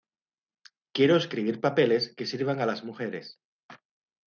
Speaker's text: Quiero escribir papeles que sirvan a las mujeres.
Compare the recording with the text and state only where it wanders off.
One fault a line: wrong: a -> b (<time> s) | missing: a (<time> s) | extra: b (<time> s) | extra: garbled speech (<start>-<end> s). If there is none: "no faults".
no faults